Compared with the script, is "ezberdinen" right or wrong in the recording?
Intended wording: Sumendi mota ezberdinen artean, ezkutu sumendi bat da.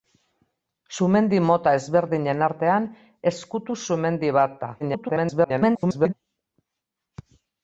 right